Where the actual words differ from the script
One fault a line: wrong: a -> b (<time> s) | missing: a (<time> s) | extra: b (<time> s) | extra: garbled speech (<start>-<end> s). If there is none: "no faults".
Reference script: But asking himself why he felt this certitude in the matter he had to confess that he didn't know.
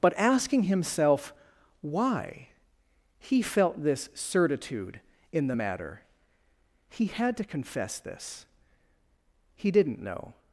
wrong: that -> this (8.0 s)